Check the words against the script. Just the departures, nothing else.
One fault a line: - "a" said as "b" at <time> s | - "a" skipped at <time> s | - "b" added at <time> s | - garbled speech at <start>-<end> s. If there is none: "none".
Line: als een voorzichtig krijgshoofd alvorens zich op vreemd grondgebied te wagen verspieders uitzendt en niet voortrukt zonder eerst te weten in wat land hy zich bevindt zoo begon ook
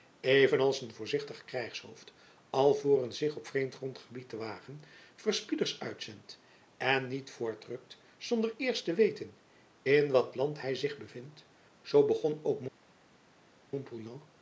none